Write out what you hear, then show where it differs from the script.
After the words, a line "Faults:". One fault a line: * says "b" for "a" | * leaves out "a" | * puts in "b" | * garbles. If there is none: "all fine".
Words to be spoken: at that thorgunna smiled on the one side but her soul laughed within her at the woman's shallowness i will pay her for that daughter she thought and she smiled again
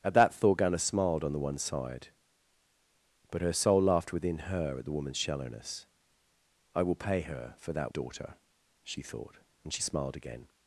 at that thorgunna smiled on the one side but her soul laughed within her at the woman's shallowness i will pay her for that daughter she thought and she smiled again
Faults:
all fine